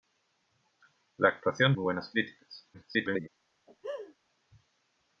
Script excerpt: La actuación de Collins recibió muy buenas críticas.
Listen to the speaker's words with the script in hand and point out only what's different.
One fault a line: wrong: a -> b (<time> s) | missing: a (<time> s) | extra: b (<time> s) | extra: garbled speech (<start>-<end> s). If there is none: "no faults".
missing: de Collins recibió (1.8 s)
extra: garbled speech (2.7-3.3 s)